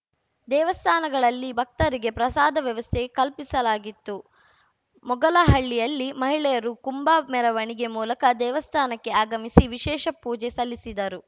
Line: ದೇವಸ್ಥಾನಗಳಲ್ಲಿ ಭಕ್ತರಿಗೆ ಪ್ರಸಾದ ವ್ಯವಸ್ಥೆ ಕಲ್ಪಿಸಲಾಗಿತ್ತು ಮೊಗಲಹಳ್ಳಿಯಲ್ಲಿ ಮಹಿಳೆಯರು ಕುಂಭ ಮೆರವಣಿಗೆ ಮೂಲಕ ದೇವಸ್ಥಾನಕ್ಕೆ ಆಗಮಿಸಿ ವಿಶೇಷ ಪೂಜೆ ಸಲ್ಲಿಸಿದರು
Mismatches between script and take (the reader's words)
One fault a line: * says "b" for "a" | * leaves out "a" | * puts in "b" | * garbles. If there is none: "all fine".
all fine